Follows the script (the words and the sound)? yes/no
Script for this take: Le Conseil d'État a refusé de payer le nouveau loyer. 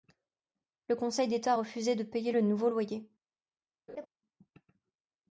no